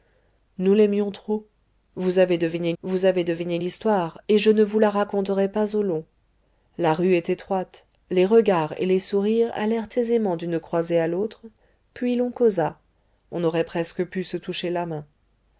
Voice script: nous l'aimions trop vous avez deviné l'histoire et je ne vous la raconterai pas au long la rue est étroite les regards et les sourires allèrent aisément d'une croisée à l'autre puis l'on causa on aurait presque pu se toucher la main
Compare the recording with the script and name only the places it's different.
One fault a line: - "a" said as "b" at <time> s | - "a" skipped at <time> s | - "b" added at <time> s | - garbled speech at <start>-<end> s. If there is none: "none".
- "vous avez deviné" added at 2.8 s